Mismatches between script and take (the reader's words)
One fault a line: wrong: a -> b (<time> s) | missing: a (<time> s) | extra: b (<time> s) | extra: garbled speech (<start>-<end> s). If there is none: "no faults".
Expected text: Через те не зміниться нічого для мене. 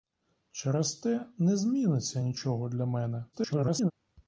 extra: garbled speech (3.3-3.9 s)